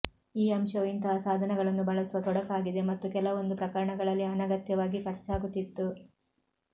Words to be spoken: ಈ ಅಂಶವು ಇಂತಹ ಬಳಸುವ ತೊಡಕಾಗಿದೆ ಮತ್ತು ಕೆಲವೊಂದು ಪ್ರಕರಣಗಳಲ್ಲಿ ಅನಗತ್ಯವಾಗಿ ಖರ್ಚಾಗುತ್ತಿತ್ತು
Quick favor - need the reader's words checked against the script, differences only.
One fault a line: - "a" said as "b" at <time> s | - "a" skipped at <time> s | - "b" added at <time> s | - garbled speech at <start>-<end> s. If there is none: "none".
- "ಸಾಧನಗಳನ್ನು" added at 1.2 s